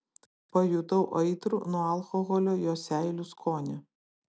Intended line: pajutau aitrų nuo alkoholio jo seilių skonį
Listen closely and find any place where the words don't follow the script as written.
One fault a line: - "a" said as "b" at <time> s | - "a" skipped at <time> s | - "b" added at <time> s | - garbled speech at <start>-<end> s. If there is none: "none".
none